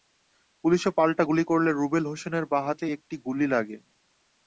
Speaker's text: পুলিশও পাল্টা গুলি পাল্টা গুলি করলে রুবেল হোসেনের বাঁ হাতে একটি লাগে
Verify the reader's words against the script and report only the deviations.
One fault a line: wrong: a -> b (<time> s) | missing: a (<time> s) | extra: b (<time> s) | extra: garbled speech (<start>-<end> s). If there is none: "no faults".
missing: পাল্টা গুলি (1.4 s)
extra: গুলি (3.3 s)